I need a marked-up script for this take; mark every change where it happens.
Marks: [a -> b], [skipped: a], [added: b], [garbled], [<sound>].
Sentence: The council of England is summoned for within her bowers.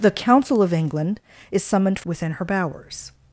The council of England is summoned for within her bowers.